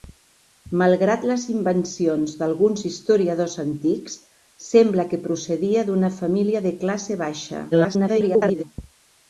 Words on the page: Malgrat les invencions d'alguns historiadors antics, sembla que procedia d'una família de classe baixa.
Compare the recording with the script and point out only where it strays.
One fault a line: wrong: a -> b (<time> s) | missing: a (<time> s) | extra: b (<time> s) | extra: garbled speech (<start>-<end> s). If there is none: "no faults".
extra: garbled speech (7.7-8.6 s)